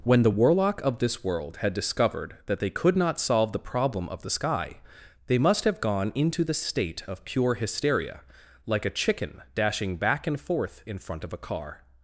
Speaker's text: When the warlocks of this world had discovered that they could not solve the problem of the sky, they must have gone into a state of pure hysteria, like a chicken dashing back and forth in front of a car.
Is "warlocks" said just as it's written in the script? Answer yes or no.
no